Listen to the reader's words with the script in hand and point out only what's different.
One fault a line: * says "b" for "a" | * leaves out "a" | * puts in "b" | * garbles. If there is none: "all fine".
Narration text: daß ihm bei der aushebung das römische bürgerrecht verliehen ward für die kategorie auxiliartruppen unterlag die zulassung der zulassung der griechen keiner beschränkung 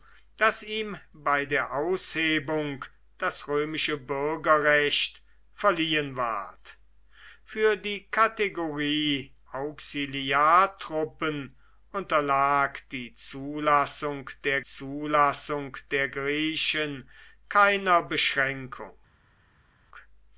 all fine